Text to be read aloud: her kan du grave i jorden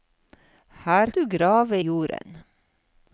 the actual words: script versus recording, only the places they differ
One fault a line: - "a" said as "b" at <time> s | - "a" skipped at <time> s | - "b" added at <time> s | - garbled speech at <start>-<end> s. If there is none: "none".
- "kan" skipped at 1.1 s
- "i" skipped at 1.8 s